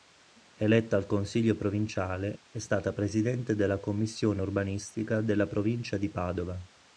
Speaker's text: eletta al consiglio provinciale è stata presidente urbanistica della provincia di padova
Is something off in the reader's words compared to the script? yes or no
yes